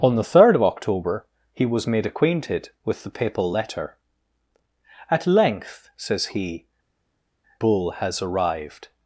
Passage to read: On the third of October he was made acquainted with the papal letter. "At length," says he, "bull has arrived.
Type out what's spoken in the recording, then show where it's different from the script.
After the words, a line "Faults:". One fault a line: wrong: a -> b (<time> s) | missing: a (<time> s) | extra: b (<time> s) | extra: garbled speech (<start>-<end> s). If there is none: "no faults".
On the third of October he was made acquainted with the papal letter. "At length," says he, "bull has arrived.
Faults:
no faults